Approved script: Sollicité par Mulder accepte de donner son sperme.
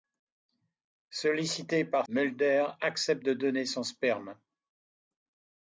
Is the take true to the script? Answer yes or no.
yes